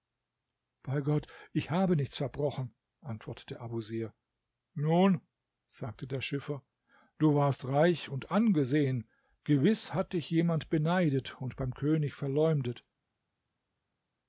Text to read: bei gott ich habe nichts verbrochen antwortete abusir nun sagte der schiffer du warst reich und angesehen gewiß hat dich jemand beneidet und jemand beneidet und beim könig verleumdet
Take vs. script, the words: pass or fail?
fail